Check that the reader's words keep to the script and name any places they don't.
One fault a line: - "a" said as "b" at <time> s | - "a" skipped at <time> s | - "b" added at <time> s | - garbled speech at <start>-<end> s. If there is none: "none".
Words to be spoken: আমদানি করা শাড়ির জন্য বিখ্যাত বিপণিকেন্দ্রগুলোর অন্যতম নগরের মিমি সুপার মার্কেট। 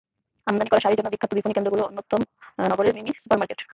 none